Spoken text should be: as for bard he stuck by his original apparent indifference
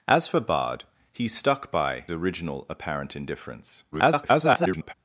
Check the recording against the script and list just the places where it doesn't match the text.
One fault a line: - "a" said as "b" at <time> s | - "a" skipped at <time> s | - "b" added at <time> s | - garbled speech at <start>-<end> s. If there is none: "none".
- "his" skipped at 2.1 s
- garbled speech at 3.9-4.9 s